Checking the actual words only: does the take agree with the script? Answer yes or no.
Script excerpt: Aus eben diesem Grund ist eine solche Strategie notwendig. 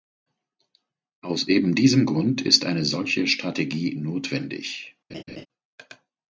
yes